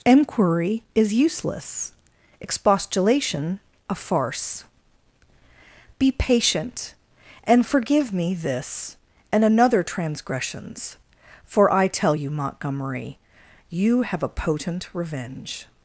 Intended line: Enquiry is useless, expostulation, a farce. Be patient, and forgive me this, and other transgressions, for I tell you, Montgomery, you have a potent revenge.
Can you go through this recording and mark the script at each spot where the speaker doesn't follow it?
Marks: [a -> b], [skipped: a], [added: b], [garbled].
Enquiry is useless, expostulation, a farce. Be patient, and forgive me this, and [other -> another] transgressions, for I tell you, Montgomery, you have a potent revenge.